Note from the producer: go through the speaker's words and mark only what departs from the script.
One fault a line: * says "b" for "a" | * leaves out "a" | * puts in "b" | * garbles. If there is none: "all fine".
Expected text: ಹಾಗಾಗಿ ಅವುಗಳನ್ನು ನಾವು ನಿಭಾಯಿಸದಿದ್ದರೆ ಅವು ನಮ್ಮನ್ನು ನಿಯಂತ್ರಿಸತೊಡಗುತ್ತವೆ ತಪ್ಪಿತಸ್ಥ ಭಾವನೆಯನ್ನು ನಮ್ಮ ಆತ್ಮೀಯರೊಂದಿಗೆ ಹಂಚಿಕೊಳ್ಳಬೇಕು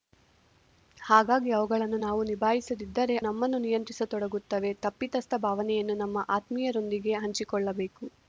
* leaves out "ಅವು"